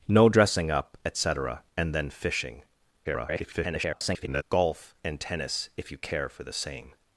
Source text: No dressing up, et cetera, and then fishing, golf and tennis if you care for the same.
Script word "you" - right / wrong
right